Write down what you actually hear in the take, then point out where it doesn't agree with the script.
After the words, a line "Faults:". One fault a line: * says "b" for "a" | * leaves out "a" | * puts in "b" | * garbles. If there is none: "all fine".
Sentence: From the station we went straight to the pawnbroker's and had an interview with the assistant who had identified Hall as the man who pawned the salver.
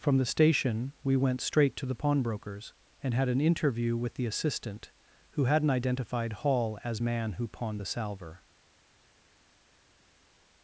From the station we went straight to the pawnbroker's and had an interview with the assistant who hadn't identified Hall as man who pawned the salver.
Faults:
* says "hadn't" for "had"
* leaves out "the"